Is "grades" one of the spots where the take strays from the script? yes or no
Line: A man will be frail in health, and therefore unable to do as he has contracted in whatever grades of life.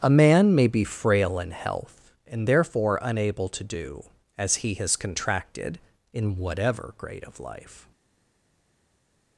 yes